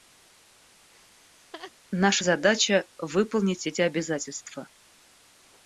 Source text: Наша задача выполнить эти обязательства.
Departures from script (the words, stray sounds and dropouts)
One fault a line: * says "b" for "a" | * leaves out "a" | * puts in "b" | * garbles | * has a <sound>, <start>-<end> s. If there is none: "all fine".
* has a laugh, 0.9-1.7 s